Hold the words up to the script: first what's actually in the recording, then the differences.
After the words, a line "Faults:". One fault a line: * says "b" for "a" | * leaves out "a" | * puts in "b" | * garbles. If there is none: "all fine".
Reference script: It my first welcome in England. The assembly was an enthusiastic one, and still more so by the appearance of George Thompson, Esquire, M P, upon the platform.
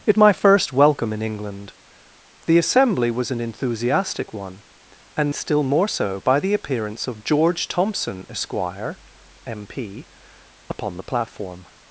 It my first welcome in England. The assembly was an enthusiastic one, and still more so by the appearance of George Thompson, Esquire, M P, upon the platform.
Faults:
all fine